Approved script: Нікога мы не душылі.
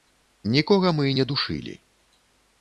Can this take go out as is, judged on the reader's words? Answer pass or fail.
pass